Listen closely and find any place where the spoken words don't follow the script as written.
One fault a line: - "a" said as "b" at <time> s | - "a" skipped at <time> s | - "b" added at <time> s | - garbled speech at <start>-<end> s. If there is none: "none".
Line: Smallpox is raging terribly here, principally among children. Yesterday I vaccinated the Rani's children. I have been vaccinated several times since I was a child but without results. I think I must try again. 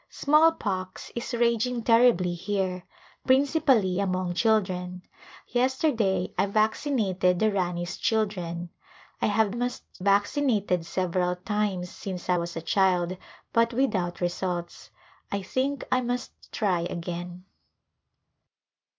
- "been" said as "must" at 9.5 s